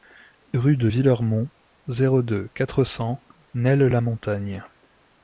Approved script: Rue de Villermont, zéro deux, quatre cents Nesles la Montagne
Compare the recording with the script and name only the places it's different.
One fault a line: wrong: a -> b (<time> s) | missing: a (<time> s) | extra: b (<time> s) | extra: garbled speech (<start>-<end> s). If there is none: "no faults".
no faults